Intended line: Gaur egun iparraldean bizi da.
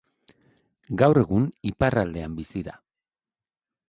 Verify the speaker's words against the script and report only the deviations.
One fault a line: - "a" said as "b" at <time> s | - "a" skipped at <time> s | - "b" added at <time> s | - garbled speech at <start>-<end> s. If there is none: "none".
none